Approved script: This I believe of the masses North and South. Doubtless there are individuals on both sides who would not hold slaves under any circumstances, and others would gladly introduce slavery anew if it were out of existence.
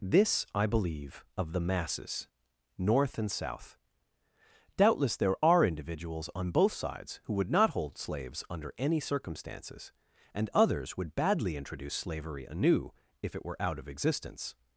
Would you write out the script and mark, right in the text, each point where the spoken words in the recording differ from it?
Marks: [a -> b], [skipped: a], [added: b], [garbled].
This I believe of the masses North and South. Doubtless there are individuals on both sides who would not hold slaves under any circumstances, and others would [gladly -> badly] introduce slavery anew if it were out of existence.